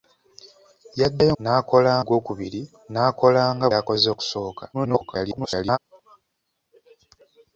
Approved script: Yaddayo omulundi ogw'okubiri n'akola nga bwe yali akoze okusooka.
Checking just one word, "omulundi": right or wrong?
wrong